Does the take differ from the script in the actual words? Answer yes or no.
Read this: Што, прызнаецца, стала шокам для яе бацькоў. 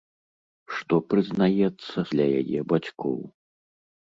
yes